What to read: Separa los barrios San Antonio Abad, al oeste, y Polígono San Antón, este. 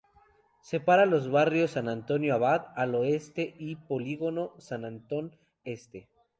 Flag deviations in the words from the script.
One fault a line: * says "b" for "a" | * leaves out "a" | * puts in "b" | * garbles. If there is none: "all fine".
all fine